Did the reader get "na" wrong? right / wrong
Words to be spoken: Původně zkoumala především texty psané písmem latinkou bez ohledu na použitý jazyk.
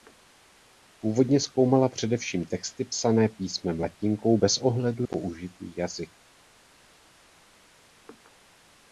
wrong